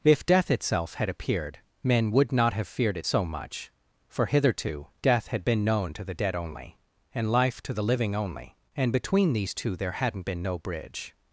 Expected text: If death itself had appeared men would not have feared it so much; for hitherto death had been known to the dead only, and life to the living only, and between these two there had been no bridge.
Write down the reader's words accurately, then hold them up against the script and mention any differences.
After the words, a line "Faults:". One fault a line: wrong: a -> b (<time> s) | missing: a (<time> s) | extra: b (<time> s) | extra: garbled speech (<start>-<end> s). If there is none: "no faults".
If death itself had appeared men would not have feared it so much; for hitherto death had been known to the dead only, and life to the living only, and between these two there hadn't been no bridge.
Faults:
wrong: had -> hadn't (9.9 s)